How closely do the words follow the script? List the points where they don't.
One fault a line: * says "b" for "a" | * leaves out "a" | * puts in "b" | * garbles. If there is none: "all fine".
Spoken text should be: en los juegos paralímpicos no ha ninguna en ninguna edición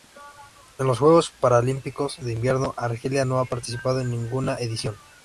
* puts in "de invierno argelia"
* says "participado" for "ninguna"